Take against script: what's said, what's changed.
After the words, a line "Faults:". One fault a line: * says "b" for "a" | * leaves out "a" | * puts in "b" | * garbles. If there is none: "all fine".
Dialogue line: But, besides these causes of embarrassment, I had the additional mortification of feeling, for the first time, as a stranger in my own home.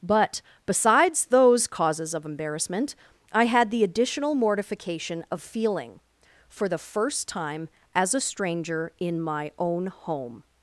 But, besides those causes of embarrassment, I had the additional mortification of feeling, for the first time, as a stranger in my own home.
Faults:
* says "those" for "these"